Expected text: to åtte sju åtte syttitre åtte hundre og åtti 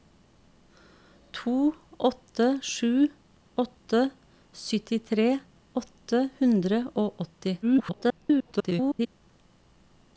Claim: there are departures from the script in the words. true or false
true